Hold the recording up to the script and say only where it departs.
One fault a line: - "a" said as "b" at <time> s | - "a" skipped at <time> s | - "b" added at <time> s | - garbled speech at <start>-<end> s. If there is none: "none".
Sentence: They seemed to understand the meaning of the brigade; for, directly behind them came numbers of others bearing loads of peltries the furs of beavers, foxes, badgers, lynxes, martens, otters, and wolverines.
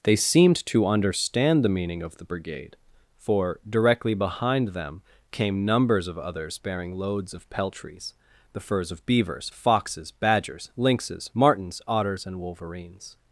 none